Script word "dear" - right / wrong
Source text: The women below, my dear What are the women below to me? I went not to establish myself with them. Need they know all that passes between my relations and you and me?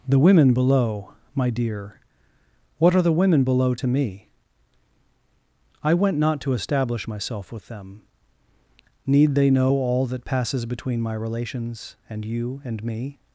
right